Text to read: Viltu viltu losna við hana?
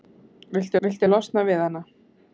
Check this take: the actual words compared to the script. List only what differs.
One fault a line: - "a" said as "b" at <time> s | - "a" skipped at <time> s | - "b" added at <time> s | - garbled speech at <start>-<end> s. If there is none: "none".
none